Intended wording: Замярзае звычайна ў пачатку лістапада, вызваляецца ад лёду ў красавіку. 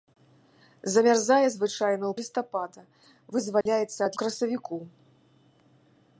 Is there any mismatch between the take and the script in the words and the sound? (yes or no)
yes